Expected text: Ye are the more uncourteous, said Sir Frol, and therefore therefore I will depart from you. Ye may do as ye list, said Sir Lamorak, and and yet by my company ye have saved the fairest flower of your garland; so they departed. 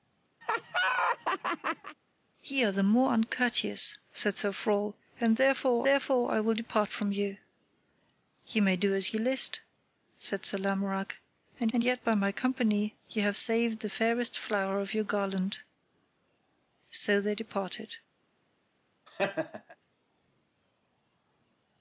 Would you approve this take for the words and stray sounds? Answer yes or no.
no